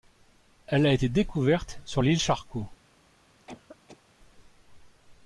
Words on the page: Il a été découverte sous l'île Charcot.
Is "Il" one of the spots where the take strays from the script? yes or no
yes